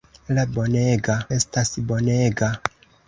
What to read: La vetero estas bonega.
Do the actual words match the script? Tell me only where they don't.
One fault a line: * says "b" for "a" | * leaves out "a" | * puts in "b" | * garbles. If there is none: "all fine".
* says "bonega" for "vetero"